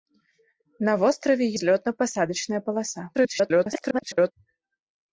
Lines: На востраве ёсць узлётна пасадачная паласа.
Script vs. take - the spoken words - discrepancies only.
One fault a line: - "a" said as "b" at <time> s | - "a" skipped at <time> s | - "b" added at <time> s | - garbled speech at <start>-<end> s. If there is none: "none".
- "ёсць" skipped at 1.4 s
- garbled speech at 3.1-4.3 s